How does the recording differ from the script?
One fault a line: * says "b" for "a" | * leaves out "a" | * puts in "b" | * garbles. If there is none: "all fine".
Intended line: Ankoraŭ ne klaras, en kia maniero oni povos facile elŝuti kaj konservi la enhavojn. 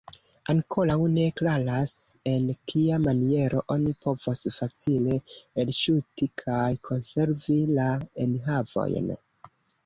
all fine